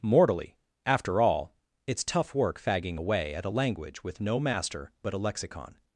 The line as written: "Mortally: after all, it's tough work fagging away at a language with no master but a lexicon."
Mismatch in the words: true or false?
false